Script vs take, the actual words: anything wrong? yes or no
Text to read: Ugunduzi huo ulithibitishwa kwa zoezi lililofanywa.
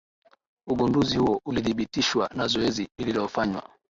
yes